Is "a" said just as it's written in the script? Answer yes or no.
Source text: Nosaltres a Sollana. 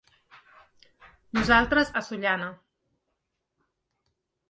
yes